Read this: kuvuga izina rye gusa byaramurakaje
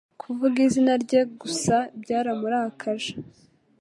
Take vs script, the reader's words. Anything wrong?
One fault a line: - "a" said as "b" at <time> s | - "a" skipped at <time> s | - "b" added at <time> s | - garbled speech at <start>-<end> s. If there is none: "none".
none